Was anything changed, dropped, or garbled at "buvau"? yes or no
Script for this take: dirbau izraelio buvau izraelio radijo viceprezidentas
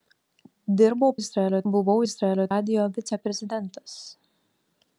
no